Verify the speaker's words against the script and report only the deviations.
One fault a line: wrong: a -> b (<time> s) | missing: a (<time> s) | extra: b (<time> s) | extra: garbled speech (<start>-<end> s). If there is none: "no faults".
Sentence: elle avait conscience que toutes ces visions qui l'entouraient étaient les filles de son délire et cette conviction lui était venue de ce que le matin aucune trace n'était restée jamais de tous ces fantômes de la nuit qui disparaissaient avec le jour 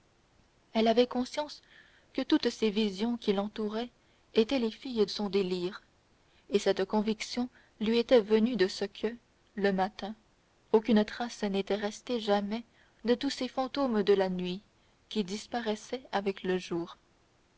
missing: de (5.0 s)